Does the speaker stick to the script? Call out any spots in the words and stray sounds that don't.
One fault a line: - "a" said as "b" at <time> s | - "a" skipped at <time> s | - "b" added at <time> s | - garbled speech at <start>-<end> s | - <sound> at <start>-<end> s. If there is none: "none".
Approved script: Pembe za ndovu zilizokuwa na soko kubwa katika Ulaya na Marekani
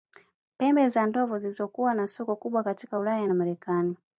none